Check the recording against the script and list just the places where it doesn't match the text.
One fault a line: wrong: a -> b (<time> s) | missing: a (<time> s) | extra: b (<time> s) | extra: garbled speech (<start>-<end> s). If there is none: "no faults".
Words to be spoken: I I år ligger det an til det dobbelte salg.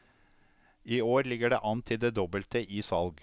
missing: I (1.0 s)
extra: i (2.6 s)